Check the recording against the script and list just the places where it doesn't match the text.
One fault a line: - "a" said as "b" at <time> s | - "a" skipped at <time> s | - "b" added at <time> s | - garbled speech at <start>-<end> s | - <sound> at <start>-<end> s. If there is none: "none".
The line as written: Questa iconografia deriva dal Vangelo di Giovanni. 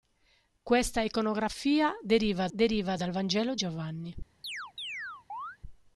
- "deriva" added at 2.5 s
- "di" skipped at 3.6 s
- chirp at 4.4-5.6 s